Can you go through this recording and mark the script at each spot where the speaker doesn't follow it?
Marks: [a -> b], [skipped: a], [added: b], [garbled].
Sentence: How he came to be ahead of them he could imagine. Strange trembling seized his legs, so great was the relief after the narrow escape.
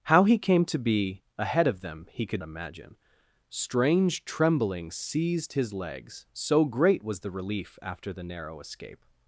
How he came to be ahead of them he could imagine. Strange trembling seized his legs, so great was the relief after the narrow escape.